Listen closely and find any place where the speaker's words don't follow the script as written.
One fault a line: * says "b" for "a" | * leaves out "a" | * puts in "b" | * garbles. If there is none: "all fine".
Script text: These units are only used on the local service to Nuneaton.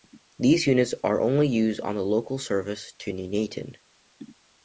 all fine